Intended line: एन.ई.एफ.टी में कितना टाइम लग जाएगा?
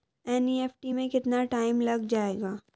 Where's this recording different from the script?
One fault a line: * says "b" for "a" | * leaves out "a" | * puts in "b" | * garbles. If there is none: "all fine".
all fine